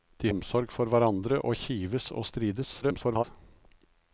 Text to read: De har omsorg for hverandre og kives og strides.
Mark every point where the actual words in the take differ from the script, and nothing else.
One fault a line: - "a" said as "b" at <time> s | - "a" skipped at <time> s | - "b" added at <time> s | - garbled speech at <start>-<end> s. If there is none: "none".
- "har" skipped at 0.3 s
- garbled speech at 2.8-3.2 s